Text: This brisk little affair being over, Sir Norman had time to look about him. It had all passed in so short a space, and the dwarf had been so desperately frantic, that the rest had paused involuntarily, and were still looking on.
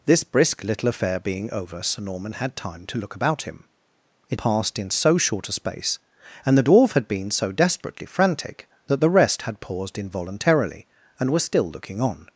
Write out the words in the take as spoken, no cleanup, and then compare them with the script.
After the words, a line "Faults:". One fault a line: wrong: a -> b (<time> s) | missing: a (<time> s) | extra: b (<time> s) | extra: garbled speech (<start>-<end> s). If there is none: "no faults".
This brisk little affair being over, Sir Norman had time to look about him. It passed in so short a space, and the dwarf had been so desperately frantic, that the rest had paused involuntarily, and were still looking on.
Faults:
missing: had all (4.4 s)